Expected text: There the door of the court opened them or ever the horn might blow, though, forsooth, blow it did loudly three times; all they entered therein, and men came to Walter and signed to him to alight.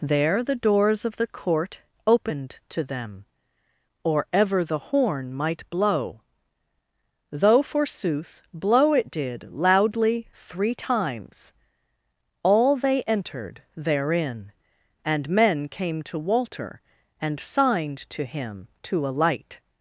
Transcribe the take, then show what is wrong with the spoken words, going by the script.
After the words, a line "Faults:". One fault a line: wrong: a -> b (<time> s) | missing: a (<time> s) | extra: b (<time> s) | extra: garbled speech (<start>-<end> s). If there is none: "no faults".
There the doors of the court opened to them or ever the horn might blow, though, forsooth, blow it did loudly three times; all they entered therein, and men came to Walter and signed to him to alight.
Faults:
wrong: door -> doors (0.6 s)
extra: to (2.7 s)